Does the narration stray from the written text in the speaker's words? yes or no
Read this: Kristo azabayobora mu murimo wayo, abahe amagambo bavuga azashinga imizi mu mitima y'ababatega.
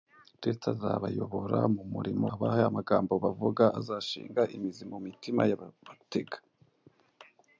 yes